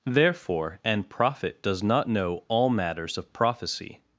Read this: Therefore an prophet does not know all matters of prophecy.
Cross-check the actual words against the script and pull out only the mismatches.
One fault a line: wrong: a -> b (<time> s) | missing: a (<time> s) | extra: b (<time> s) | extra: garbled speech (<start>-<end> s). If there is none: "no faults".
no faults